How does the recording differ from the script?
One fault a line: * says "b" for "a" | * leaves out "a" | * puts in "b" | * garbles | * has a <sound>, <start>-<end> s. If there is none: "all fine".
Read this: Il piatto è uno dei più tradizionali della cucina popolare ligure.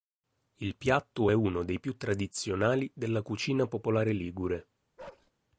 * has a bark, 5.0-5.3 s